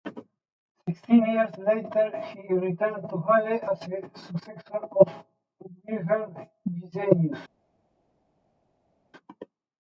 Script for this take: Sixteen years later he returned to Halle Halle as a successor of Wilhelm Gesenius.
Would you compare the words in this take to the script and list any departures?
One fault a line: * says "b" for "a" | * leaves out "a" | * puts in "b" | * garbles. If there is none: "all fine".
* leaves out "Halle"